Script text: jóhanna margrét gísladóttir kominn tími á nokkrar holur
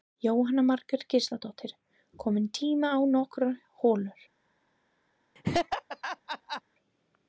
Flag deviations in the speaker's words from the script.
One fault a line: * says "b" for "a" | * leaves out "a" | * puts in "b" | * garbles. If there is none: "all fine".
all fine